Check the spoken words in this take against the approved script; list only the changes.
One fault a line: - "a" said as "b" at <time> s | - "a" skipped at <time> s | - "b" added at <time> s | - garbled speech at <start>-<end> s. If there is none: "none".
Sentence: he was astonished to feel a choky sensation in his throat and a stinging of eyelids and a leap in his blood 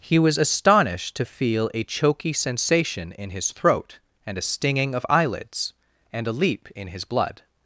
none